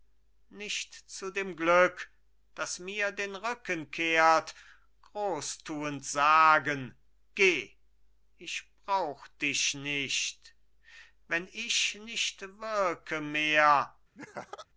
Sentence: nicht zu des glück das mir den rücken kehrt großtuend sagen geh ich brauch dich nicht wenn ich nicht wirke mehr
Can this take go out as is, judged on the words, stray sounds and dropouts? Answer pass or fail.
fail